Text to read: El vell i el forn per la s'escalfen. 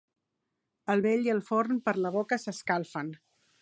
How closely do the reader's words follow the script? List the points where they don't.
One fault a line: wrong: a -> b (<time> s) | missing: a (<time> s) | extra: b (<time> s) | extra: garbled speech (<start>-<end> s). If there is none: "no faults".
extra: boca (2.2 s)